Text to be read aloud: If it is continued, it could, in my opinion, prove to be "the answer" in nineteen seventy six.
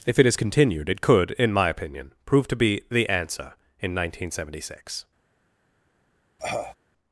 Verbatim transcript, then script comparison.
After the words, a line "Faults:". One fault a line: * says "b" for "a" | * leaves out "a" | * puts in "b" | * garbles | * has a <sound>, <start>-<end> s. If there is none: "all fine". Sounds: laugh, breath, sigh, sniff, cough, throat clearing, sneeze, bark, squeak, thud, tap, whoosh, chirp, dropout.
If it is continued, it could, in my opinion, prove to be "the answer" in nineteen seventy six.
Faults:
* has a cough, 6.4-6.8 s